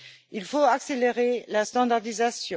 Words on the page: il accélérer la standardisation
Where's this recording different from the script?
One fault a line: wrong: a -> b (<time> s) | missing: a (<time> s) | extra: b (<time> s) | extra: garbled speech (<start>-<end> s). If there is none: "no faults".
extra: faut (0.5 s)